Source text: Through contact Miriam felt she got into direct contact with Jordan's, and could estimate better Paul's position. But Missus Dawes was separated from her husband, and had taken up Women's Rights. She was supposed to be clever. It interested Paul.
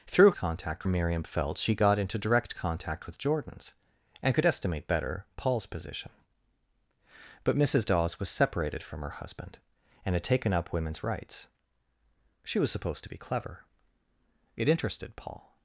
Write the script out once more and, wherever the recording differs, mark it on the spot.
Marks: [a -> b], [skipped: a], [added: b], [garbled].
Through contact Miriam felt she got into direct contact with Jordan's, and could estimate better Paul's position. But Missus Dawes was separated from her husband, and had taken up Women's Rights. She was supposed to be clever. It interested Paul.